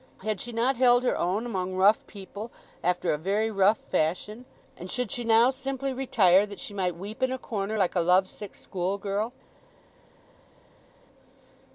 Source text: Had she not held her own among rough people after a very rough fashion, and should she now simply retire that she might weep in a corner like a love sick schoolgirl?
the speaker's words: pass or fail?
pass